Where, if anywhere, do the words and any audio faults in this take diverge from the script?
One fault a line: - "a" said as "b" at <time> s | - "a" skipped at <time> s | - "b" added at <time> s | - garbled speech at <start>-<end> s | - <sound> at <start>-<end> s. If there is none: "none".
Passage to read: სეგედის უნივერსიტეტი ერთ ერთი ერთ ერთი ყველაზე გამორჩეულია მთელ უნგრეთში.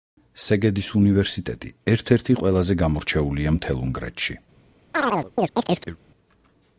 - "ერთ ერთი" skipped at 2.4 s
- chirp at 4.9-6.0 s